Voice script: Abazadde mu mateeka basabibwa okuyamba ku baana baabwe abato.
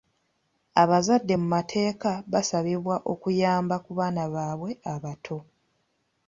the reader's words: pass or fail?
pass